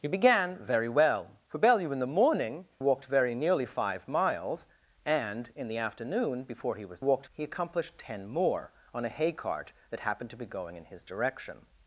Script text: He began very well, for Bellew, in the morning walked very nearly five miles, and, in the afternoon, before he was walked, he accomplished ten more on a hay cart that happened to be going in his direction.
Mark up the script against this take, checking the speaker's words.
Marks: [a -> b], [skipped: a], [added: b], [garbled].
He began very well, for Bellew, in the morning walked very nearly five miles, and, in the afternoon, before he was walked, he accomplished ten more on a hay cart that happened to be going in his direction.